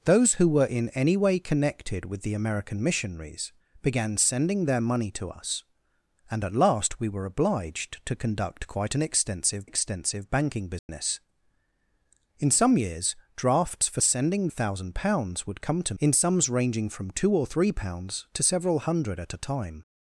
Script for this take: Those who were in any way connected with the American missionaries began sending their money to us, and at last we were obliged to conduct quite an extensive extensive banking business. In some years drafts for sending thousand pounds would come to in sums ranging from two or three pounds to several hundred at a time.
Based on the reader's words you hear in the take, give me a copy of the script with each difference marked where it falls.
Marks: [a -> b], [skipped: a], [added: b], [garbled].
Those who were in any way connected with the American missionaries began sending their money to us, and at last we were obliged to conduct quite an extensive extensive banking business. In some years drafts for sending thousand pounds would come to in sums ranging from two or three pounds to several hundred at a time.